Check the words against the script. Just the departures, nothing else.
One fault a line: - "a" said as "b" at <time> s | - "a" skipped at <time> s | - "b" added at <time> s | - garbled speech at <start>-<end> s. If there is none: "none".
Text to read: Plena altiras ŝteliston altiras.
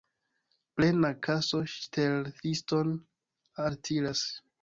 - "altiras" said as "kaso" at 1.3 s